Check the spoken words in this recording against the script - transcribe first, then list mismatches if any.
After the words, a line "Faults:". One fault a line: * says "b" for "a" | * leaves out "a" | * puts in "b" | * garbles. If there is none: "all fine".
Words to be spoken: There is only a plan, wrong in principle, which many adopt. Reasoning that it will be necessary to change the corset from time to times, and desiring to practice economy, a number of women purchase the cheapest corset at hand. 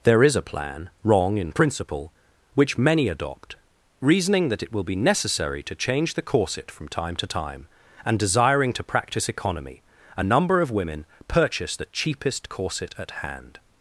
There is a plan, wrong in principle, which many adopt. Reasoning that it will be necessary to change the corset from time to time, and desiring to practice economy, a number of women purchase the cheapest corset at hand.
Faults:
* leaves out "only"
* says "time" for "times"